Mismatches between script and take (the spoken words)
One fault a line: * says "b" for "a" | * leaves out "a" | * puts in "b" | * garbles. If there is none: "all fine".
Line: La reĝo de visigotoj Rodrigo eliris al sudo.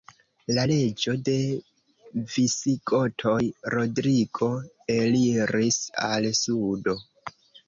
all fine